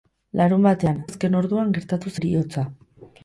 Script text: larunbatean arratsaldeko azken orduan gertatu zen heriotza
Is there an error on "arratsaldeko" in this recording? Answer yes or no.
yes